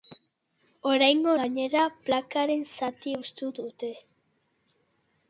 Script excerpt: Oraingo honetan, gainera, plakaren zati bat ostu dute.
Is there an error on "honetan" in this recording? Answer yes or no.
yes